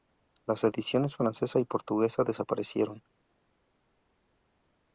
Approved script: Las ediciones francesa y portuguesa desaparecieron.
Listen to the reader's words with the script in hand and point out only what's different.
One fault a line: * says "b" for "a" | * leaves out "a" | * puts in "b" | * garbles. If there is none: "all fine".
all fine